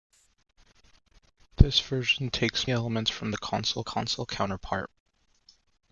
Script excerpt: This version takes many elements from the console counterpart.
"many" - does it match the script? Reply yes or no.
no